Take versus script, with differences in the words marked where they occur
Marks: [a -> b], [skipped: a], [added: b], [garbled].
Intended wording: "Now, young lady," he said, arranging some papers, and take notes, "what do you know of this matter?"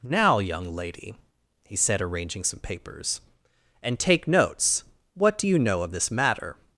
"Now, young lady," he said, arranging some papers, and take notes, "what do you know of this matter?"